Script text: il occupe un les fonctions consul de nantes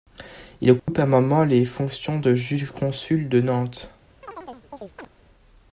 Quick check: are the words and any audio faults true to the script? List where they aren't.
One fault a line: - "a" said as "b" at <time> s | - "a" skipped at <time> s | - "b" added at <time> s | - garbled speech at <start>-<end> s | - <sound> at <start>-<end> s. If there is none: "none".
- dropout at 0.8-0.9 s
- "moment" added at 1.1 s
- "de juge" added at 2.2 s
- chirp at 4.2-5.1 s